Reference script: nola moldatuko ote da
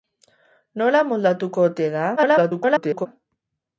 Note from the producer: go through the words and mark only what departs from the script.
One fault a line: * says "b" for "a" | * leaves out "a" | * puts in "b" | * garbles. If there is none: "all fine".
* garbles